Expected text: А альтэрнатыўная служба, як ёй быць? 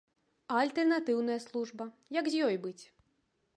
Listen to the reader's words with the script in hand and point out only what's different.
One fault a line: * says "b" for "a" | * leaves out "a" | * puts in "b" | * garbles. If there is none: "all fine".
* puts in "з"